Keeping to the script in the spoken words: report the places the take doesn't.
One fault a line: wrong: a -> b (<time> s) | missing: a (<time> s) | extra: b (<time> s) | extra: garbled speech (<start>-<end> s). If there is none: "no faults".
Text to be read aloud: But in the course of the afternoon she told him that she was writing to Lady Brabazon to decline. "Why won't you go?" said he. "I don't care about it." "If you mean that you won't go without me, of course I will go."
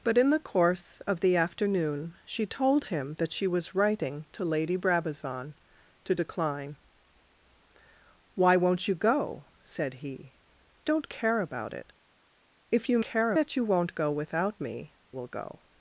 missing: I (10.3 s)
wrong: mean -> care (13.0 s)
missing: of course I (14.9 s)